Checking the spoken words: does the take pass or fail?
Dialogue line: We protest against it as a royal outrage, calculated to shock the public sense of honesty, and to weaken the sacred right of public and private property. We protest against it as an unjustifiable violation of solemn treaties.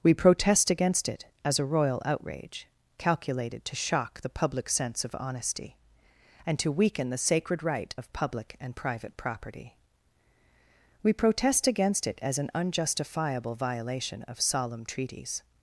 pass